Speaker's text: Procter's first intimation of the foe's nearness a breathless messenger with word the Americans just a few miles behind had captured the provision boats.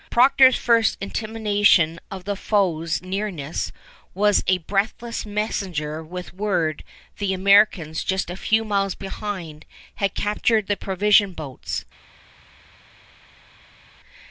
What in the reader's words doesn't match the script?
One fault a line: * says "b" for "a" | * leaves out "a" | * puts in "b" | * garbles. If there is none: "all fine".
* puts in "was"